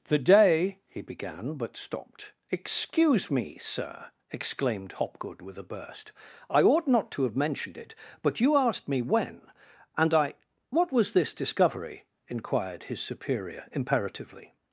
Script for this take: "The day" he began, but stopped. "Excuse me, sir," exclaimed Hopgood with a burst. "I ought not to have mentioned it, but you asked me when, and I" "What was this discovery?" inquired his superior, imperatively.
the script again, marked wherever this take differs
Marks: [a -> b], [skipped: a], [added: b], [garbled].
"The day" he began, but stopped. "Excuse me, sir," exclaimed Hopgood with a burst. "I ought not to have mentioned it, but you asked me when, and I" "What was this discovery?" inquired his superior, imperatively.